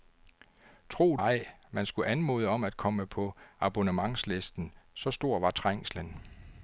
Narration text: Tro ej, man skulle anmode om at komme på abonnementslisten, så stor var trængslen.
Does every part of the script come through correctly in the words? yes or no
yes